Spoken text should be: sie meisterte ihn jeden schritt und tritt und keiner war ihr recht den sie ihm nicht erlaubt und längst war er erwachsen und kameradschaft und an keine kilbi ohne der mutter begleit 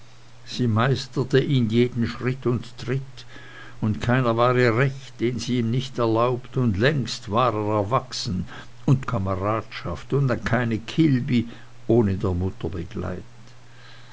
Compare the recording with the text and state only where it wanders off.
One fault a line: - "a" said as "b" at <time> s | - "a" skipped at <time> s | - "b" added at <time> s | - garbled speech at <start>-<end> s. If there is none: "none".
none